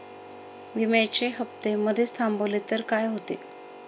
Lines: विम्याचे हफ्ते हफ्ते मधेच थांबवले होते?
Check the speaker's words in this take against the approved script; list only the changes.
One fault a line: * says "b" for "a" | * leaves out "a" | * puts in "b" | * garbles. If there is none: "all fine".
* leaves out "हफ्ते"
* puts in "तर काय"